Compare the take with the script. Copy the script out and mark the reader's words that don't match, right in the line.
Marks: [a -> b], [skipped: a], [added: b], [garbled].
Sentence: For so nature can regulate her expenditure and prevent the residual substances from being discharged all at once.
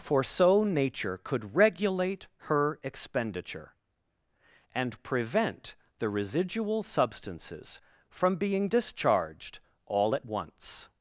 For so nature [can -> could] regulate her expenditure and prevent the residual substances from being discharged all at once.